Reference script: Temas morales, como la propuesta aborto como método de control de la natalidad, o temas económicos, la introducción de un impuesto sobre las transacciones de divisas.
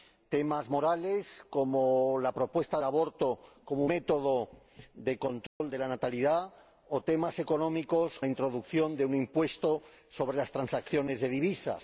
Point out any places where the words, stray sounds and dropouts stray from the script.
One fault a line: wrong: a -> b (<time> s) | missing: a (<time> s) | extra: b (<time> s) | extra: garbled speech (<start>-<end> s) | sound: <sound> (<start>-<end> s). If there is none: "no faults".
sound: dropout (5.5-5.6 s)